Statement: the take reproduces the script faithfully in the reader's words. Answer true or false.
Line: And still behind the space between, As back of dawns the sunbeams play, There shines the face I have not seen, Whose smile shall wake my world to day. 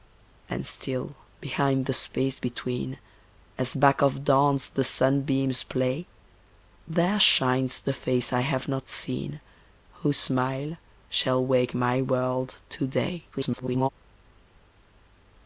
false